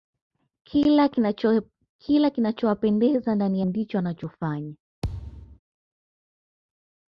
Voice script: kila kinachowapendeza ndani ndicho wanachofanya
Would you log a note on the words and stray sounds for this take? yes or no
yes